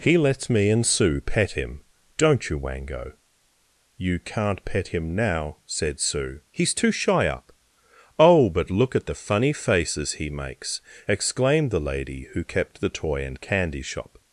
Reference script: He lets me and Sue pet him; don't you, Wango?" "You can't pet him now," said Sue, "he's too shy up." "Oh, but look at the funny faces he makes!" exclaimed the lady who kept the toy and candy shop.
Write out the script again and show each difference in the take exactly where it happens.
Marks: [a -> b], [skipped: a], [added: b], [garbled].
He lets me and Sue pet him; don't you, Wango?" "You can't pet him now," said Sue, "he's too shy up." "Oh, but look at the funny faces he makes!" exclaimed the lady who kept the toy and candy shop.